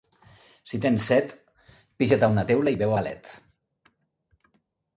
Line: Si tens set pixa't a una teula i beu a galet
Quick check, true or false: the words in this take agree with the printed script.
true